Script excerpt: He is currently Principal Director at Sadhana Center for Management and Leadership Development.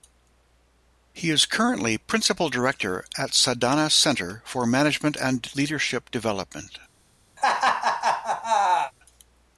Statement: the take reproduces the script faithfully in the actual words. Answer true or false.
true